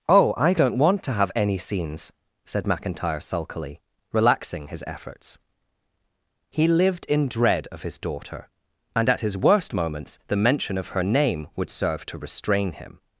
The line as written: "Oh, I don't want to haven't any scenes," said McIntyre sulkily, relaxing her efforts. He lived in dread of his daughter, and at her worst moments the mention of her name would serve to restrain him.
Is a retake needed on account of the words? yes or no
yes